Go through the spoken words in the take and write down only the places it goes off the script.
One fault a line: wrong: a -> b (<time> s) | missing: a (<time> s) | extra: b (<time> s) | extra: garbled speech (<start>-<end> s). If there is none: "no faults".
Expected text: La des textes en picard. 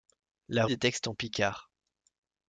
no faults